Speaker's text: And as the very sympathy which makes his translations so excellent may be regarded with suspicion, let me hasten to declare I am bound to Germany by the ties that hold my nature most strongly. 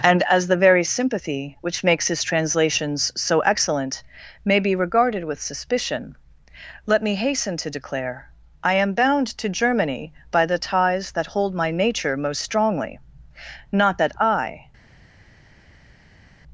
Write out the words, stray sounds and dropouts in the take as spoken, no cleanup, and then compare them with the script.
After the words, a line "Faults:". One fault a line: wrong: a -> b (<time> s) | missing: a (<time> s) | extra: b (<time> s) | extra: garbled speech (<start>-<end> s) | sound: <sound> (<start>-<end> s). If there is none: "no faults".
And as the very sympathy which makes his translations so excellent may be regarded with suspicion, let me hasten to declare I am bound to Germany by the ties that hold my nature most strongly. Not that I
Faults:
extra: Not that I (13.7 s)